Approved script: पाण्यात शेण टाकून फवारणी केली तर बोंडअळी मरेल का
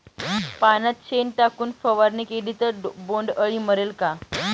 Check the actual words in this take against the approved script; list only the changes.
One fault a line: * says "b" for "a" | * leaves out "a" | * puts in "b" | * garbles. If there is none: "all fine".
all fine